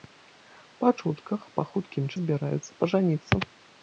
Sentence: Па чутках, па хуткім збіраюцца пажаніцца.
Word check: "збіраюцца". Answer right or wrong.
right